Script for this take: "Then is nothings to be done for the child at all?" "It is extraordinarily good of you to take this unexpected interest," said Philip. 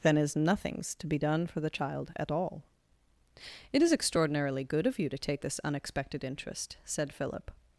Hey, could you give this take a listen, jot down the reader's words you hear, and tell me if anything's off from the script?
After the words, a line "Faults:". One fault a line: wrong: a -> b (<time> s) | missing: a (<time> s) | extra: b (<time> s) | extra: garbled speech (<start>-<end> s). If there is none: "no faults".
"Then is nothings to be done for the child at all?" "It is extraordinarily good of you to take this unexpected interest," said Philip.
Faults:
no faults